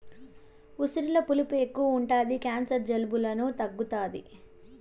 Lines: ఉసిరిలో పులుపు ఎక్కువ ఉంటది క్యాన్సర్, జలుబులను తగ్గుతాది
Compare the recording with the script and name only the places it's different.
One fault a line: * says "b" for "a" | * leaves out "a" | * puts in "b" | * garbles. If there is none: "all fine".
all fine